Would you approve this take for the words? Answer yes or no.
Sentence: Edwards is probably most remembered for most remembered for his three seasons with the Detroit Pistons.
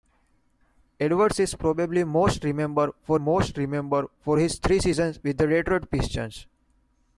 yes